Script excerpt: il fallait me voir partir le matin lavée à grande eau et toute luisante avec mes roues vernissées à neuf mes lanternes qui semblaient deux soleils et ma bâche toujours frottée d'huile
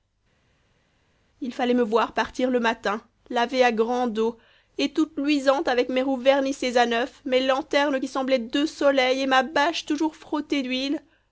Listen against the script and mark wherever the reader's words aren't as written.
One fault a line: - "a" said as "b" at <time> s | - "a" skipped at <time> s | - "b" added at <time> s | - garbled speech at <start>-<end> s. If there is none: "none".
none